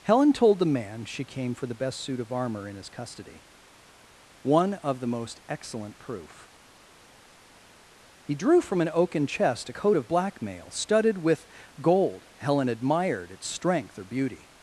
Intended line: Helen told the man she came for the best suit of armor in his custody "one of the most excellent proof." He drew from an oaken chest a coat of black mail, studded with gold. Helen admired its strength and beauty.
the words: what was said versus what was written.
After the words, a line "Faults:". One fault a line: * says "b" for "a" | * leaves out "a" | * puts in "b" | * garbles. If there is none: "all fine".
Helen told the man she came for the best suit of armor in his custody "one of the most excellent proof." He drew from an oaken chest a coat of black mail, studded with gold. Helen admired its strength or beauty.
Faults:
* says "or" for "and"